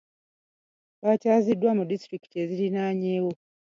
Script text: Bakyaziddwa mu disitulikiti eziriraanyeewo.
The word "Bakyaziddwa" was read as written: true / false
true